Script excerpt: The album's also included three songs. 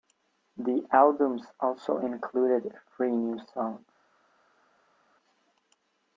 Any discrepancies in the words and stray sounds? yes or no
yes